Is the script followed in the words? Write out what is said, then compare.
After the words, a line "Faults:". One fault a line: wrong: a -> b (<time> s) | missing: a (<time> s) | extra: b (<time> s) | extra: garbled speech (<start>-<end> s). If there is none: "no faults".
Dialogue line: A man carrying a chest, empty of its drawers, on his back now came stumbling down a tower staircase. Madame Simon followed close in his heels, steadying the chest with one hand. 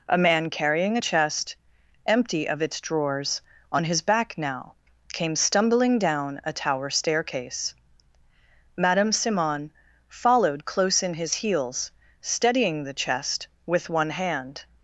A man carrying a chest, empty of its drawers, on his back now came stumbling down a tower staircase. Madame Simon followed close in his heels, steadying the chest with one hand.
Faults:
no faults